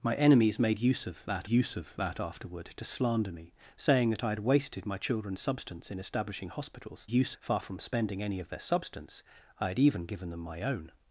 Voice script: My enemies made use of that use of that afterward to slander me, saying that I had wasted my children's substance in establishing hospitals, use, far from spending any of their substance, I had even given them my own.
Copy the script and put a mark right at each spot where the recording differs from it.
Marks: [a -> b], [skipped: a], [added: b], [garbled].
My enemies made use of that use of that afterward to slander me, saying that I had wasted my children's substance in establishing hospitals, use, far from spending any of their substance, I had even given them my own.